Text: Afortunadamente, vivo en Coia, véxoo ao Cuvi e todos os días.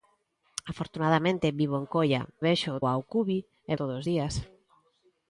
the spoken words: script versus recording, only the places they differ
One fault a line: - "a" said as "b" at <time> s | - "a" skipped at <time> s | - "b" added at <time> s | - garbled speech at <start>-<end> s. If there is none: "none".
none